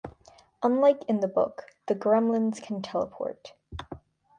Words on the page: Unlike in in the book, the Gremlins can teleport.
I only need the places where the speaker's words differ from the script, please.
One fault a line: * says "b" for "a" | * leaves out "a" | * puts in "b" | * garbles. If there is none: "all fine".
* leaves out "in"